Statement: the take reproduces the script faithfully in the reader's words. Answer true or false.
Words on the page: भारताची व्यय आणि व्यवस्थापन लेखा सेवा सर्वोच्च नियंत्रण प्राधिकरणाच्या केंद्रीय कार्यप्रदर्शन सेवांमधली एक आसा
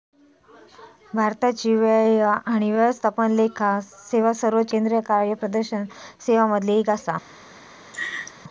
false